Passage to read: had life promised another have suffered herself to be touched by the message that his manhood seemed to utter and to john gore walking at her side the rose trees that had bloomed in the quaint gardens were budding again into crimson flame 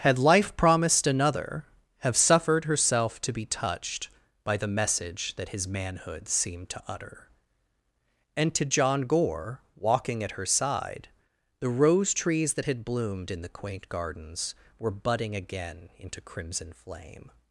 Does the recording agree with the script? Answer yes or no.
yes